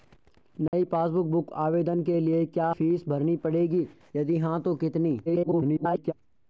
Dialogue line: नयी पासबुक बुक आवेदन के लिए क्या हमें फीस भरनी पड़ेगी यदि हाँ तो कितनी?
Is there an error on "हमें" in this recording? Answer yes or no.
yes